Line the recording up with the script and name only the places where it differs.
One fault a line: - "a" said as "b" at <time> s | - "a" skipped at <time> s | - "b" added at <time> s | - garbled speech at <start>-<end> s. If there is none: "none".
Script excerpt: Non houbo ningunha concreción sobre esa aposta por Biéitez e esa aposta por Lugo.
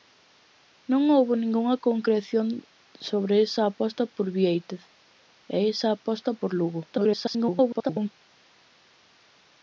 - garbled speech at 6.9-8.1 s